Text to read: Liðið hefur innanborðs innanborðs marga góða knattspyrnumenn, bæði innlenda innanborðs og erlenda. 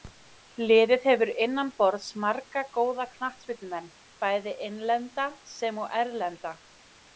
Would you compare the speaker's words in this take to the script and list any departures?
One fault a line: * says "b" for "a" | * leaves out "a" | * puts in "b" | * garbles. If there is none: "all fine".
* leaves out "innanborðs"
* says "sem" for "innanborðs"